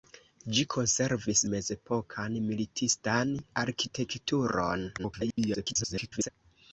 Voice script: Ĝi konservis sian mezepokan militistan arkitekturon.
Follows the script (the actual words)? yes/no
no